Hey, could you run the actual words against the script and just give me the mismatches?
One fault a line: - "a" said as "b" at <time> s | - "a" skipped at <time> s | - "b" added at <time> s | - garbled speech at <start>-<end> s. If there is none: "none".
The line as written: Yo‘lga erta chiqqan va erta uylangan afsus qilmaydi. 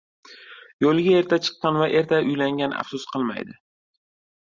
none